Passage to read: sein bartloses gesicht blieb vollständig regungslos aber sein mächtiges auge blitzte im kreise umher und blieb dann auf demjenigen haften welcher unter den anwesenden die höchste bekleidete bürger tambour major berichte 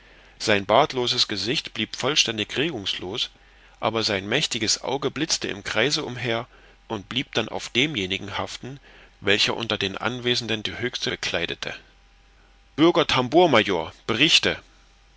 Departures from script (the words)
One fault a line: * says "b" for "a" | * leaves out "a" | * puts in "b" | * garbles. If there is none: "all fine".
all fine